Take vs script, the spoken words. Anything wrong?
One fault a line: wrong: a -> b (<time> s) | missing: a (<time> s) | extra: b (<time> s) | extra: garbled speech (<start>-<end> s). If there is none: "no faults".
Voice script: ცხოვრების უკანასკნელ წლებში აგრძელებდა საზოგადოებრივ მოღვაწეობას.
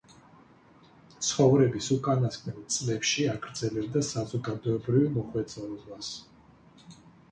no faults